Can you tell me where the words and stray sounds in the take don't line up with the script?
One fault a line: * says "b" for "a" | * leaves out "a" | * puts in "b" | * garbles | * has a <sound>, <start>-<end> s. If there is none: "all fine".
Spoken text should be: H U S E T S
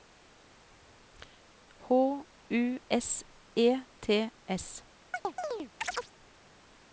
* has a chirp, 5.1-6.1 s